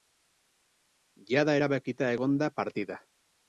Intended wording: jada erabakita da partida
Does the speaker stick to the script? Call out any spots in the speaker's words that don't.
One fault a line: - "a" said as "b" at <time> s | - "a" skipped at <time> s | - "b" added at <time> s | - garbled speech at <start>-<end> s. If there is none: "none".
- "egon" added at 2.2 s